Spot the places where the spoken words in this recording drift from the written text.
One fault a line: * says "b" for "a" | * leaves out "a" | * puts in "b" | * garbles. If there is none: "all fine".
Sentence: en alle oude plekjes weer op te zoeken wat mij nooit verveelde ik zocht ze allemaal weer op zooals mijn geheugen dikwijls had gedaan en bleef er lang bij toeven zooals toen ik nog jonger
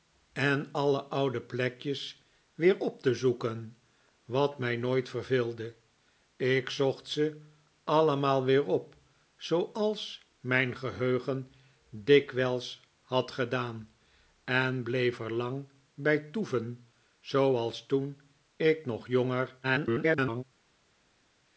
* garbles